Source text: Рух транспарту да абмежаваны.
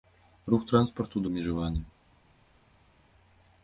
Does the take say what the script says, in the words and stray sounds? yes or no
yes